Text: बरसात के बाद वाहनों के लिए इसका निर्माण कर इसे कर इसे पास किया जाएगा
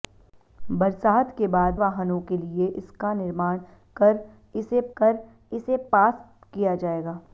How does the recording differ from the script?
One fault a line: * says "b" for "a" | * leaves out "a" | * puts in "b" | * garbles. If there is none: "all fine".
all fine